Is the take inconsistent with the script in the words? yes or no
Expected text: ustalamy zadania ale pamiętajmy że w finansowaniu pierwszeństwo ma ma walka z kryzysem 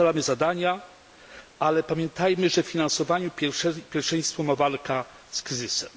yes